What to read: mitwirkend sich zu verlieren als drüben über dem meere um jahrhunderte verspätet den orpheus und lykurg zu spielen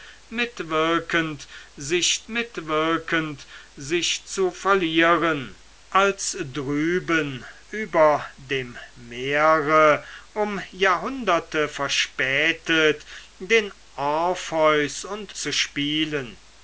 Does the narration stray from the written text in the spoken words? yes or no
yes